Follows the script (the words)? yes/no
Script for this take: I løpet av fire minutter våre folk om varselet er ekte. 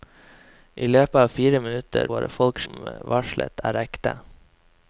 yes